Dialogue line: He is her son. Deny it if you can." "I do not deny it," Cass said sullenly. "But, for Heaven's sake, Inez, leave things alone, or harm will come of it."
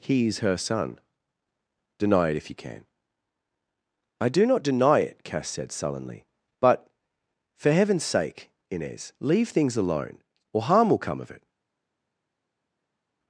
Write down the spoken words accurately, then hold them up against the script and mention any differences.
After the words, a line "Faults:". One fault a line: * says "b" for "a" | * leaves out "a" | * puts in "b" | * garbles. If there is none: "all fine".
He is her son. Deny it if you can." "I do not deny it," Cass said sullenly. "But, for Heaven's sake, Inez, leave things alone, or harm will come of it."
Faults:
all fine